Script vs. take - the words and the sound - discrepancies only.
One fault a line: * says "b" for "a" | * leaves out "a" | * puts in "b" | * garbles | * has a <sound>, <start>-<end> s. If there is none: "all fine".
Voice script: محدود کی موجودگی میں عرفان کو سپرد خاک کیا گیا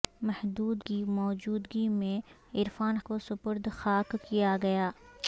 all fine